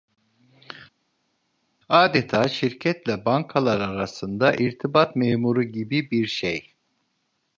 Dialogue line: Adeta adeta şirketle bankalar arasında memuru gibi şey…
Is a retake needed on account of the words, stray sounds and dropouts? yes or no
yes